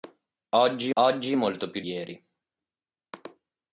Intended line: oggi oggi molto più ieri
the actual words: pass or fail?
pass